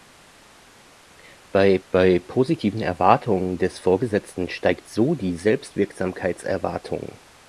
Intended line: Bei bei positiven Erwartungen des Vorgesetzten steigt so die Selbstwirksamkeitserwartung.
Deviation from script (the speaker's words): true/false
false